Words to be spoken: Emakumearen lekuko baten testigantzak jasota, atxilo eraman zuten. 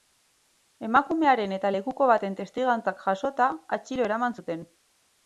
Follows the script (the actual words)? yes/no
no